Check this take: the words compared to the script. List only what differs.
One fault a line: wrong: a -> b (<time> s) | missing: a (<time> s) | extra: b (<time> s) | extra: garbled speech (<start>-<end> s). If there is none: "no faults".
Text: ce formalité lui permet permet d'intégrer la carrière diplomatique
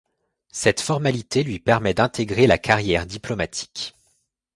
wrong: ce -> cette (0.5 s)
missing: permet (1.9 s)